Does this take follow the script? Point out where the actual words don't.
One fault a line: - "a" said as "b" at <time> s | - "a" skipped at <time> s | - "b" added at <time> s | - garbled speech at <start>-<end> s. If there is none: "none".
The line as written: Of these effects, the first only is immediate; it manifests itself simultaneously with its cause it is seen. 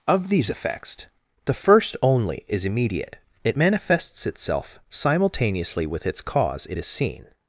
none